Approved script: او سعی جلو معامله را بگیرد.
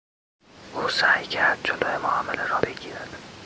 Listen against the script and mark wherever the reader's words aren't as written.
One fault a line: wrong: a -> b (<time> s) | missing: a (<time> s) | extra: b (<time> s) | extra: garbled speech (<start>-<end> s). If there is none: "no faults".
extra: کرد (1.2 s)